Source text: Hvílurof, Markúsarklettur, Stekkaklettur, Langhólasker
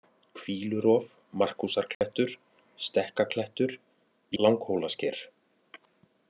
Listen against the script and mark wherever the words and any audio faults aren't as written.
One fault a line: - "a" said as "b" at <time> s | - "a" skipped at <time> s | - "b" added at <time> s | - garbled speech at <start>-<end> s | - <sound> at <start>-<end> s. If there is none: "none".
- dropout at 1.9-2.0 s